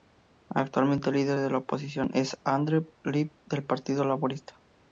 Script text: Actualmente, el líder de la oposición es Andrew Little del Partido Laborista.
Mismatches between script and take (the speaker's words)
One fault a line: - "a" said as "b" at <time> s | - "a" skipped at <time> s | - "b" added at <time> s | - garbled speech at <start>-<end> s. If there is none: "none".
none